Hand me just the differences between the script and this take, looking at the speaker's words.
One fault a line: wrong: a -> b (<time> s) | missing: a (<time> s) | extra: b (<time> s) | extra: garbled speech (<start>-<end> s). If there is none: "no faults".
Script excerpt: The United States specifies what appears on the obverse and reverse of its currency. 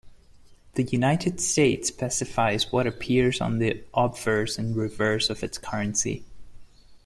no faults